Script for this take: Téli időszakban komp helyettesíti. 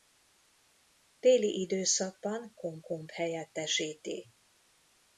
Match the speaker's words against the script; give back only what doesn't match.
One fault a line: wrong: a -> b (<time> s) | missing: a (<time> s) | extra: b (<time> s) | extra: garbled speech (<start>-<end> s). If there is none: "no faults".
extra: komp (2.8 s)